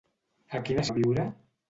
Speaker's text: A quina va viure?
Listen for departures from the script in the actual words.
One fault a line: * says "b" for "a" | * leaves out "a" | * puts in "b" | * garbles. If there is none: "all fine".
all fine